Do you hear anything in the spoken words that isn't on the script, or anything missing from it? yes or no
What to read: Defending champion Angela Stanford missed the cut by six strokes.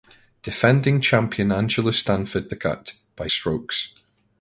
yes